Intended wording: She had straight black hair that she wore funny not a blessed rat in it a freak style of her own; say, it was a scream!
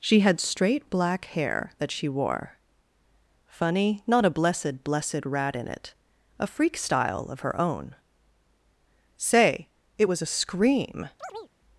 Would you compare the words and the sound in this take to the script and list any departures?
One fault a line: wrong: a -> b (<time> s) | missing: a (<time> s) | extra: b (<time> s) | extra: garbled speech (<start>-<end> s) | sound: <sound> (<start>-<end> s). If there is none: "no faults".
extra: blessed (4.9 s)
sound: chirp (11.2-11.5 s)